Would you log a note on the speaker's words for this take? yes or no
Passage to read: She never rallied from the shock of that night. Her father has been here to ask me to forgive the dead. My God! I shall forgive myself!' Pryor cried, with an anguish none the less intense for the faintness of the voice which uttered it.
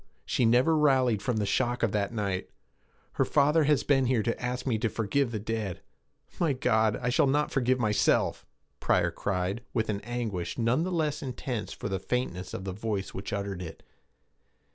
yes